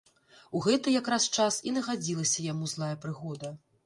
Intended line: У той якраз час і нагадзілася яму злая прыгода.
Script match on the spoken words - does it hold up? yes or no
no